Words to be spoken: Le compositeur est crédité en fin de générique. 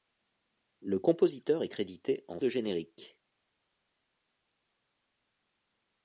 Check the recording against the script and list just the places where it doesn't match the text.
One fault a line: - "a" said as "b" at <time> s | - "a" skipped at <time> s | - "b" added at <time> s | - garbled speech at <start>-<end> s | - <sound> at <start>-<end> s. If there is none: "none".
- "fin" skipped at 2.4 s